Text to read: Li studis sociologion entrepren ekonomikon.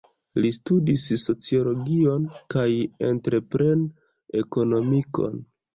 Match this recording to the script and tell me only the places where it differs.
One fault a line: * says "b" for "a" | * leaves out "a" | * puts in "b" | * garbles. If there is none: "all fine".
* puts in "kaj"